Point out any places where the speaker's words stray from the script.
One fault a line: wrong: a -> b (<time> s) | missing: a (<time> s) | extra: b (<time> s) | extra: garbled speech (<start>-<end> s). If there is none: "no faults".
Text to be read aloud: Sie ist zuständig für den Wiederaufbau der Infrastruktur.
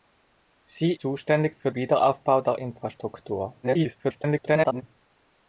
missing: ist (0.9 s)
missing: den (1.7 s)
extra: garbled speech (3.6-4.8 s)